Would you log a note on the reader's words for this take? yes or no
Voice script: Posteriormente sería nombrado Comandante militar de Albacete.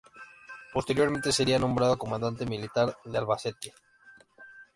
no